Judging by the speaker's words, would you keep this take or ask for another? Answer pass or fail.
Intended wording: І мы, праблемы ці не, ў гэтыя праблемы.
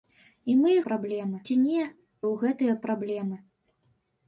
pass